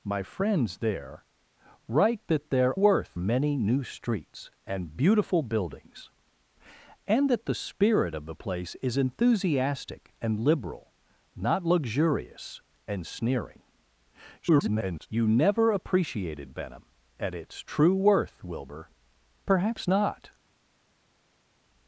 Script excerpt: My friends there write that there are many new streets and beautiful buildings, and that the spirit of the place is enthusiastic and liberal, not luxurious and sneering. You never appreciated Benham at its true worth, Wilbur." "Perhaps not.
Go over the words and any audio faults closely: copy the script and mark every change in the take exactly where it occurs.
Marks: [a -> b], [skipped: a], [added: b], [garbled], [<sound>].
My friends there write that there [are -> worth] many new streets and beautiful buildings, and that the spirit of the place is enthusiastic and liberal, not luxurious and sneering. [garbled] You never appreciated Benham at its true worth, Wilbur." "Perhaps not.